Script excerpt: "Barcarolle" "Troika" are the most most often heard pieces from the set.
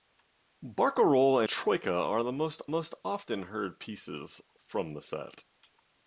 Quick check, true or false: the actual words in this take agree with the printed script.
true